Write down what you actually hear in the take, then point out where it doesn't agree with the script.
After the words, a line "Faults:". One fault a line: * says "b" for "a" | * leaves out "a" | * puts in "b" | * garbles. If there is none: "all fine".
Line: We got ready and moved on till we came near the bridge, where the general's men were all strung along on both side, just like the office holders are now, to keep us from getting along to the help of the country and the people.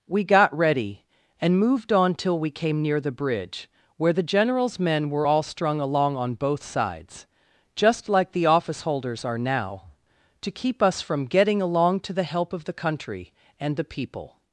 We got ready and moved on till we came near the bridge, where the general's men were all strung along on both sides, just like the office holders are now, to keep us from getting along to the help of the country and the people.
Faults:
* says "sides" for "side"